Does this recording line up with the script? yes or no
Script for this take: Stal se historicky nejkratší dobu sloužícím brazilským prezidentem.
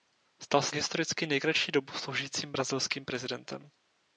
yes